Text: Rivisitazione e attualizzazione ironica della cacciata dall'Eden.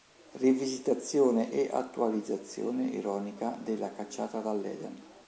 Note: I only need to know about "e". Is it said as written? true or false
true